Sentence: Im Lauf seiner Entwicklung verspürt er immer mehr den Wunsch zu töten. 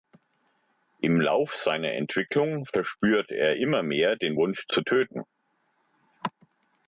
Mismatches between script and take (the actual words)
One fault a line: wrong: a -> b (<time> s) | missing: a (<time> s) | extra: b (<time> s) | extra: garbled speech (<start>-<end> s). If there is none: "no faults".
no faults